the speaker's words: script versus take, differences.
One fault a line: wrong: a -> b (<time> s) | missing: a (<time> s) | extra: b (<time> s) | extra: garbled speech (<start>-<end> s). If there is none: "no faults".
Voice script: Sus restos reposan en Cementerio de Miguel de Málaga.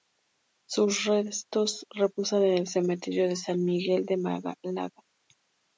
extra: el (2.6 s)
extra: San (3.4 s)